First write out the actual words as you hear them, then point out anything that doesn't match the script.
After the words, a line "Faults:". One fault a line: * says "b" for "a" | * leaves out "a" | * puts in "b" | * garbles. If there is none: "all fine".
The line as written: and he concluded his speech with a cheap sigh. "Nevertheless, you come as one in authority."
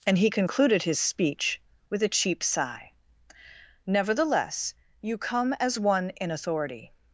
and he concluded his speech with a cheap sigh. "Nevertheless, you come as one in authority."
Faults:
all fine